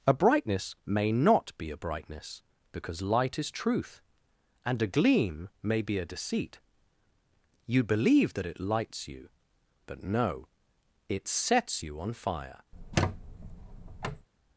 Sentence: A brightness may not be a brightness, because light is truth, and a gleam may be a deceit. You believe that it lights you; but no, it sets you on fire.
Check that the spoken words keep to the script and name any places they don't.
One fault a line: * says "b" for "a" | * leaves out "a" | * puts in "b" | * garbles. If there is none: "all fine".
all fine